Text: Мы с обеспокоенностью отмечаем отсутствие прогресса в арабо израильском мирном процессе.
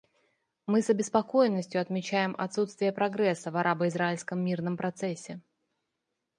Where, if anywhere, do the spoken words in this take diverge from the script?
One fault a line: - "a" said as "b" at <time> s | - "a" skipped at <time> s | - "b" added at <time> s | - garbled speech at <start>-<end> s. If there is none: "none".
none